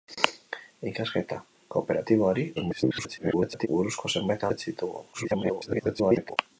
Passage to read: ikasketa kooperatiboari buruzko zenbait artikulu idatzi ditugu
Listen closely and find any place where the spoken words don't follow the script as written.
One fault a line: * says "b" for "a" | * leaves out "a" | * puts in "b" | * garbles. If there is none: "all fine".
* garbles
* leaves out "artikulu"
* garbles